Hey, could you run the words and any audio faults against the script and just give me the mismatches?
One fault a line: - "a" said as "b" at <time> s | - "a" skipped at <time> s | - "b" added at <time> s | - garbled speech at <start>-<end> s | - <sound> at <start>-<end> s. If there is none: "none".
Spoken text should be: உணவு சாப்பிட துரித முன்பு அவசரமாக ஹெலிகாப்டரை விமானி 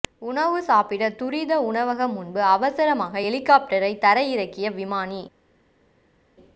- "உணவகம்" added at 1.6 s
- "தரை இறக்கிய" added at 4.0 s